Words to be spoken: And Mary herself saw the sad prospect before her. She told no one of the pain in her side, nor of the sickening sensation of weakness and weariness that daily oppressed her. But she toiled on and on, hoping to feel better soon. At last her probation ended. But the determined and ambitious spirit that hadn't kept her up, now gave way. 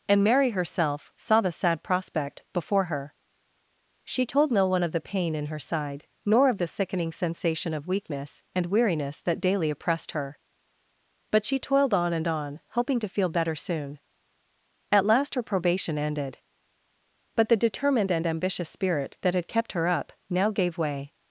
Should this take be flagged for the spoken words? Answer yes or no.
yes